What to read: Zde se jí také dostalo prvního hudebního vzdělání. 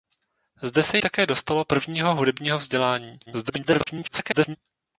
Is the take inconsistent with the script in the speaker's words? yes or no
yes